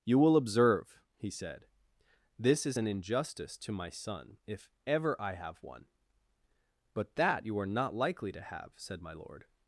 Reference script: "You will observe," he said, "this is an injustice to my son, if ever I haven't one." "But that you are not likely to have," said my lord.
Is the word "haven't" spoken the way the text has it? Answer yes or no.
no